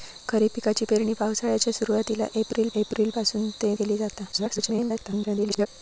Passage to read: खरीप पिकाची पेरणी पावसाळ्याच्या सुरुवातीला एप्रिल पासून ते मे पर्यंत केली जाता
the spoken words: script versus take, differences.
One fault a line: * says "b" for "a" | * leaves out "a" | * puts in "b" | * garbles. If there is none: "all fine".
* puts in "एप्रिल"
* leaves out "मे पर्यंत"
* garbles